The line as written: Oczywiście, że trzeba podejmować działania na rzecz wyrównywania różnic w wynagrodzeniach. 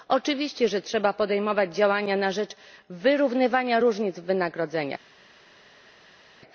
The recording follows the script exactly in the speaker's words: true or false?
true